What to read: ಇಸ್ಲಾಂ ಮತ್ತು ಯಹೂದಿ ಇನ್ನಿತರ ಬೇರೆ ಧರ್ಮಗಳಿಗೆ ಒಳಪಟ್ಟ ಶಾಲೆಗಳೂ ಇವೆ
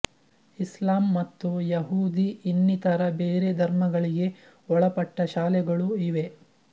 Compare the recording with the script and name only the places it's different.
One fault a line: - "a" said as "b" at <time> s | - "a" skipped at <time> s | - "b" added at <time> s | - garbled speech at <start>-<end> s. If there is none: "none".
none